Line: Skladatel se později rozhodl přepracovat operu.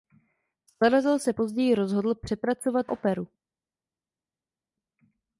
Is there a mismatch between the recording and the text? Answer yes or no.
no